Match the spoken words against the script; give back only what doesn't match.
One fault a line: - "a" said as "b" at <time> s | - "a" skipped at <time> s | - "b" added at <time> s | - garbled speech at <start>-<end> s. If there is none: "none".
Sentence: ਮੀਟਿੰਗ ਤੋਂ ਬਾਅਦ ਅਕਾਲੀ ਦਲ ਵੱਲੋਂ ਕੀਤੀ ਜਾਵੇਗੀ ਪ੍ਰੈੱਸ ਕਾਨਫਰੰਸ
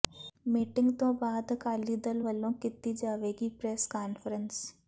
none